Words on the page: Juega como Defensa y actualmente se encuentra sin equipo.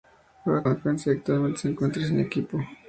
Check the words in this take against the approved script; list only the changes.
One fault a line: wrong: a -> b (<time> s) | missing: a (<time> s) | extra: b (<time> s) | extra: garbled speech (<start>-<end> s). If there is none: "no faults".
missing: como (0.7 s)